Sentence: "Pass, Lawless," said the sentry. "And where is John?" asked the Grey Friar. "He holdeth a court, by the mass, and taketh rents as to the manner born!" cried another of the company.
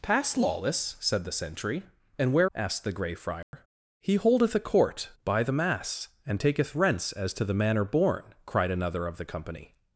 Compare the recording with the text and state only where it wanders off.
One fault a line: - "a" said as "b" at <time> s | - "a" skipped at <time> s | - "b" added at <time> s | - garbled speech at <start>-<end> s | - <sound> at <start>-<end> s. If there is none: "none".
- "is John" skipped at 2.5 s
- dropout at 3.4-3.5 s